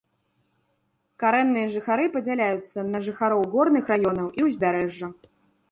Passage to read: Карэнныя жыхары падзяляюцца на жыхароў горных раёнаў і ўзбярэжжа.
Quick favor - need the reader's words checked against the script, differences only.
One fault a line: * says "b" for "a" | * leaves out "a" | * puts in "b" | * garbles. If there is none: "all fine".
all fine